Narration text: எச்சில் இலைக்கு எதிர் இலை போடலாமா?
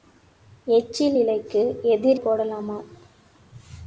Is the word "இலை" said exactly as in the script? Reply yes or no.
no